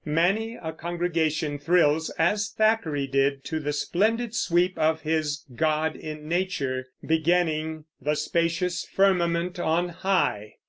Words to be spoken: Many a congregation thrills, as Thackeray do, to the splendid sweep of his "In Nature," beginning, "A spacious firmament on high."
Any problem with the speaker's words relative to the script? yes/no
yes